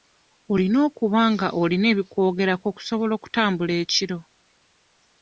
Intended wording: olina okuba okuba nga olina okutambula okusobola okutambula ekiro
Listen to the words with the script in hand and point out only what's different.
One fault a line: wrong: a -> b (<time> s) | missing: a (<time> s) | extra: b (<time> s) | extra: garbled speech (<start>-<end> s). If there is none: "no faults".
missing: okuba (1.2 s)
wrong: okutambula -> ebikwogerako (1.9 s)